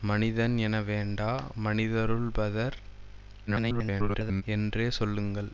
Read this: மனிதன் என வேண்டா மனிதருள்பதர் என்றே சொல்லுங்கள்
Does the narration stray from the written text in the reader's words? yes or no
yes